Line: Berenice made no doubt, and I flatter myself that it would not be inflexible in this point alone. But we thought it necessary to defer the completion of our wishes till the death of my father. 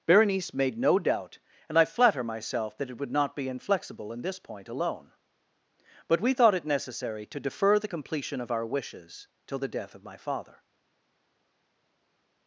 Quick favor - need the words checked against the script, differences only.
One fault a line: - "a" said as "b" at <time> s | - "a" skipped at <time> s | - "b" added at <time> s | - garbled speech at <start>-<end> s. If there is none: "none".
none